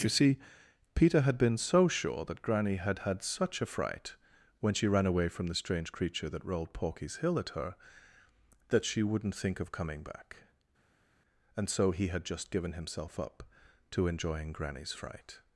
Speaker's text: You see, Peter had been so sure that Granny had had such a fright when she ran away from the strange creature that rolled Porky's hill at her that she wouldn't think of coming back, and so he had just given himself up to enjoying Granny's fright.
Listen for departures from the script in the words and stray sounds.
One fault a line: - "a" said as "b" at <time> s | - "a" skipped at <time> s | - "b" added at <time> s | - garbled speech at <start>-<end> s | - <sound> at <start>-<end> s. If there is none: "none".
none